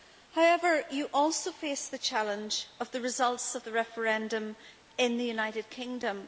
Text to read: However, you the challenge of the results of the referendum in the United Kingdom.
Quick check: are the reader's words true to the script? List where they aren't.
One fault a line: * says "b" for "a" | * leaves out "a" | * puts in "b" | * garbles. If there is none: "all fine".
* puts in "also face"